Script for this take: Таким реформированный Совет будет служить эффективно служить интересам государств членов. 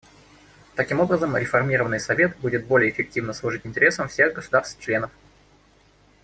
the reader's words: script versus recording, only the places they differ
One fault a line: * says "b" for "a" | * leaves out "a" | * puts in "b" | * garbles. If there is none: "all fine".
* puts in "образом"
* says "более" for "служить"
* puts in "всех"